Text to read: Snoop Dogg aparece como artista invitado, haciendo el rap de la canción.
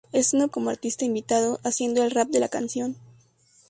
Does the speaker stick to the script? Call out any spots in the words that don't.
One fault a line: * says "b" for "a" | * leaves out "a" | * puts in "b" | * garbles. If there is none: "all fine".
* leaves out "Dogg aparece"